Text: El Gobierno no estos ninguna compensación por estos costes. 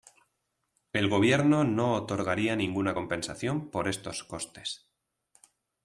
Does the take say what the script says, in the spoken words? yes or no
no